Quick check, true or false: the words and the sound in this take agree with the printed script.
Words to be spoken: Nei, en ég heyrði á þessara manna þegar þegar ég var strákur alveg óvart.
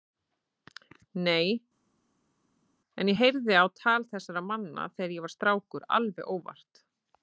false